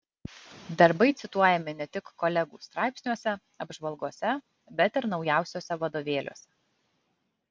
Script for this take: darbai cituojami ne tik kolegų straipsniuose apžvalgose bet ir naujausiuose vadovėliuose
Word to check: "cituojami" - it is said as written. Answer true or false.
true